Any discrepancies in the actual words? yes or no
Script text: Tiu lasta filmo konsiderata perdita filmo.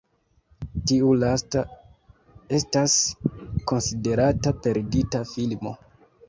yes